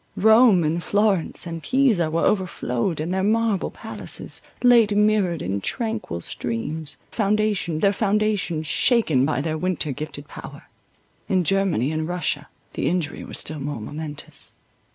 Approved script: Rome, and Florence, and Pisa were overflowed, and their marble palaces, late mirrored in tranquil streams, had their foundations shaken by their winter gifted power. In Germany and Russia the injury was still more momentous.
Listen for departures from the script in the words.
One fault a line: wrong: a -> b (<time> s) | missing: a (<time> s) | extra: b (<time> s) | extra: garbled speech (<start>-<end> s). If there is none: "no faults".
wrong: had -> foundations (7.1 s)